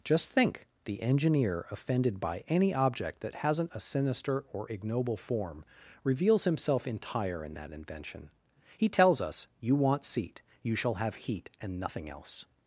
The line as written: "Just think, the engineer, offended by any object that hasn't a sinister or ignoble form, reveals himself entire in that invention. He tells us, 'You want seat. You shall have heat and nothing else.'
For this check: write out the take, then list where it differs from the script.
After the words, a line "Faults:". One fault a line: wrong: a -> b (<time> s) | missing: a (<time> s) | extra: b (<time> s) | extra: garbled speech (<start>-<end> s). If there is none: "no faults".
"Just think, the engineer, offended by any object that hasn't a sinister or ignoble form, reveals himself entire in that invention. He tells us, 'You want seat. You shall have heat and nothing else.'
Faults:
no faults